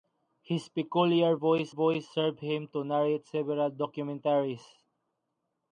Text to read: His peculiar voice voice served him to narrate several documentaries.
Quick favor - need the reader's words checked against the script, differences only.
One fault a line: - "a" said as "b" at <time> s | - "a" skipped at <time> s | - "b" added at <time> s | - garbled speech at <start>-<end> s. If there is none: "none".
none